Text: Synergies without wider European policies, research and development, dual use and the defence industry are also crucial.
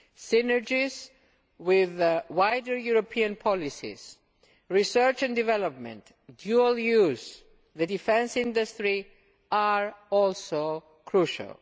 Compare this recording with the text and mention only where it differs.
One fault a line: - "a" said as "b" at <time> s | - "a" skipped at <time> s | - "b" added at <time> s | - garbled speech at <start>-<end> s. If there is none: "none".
- "without" said as "with" at 1.6 s